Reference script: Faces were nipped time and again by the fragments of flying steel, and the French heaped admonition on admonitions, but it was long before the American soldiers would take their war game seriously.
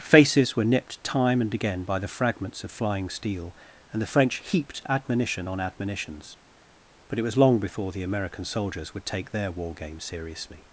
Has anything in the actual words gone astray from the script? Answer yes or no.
no